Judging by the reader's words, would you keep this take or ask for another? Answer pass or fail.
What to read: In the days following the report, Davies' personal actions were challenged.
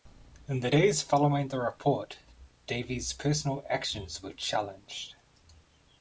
pass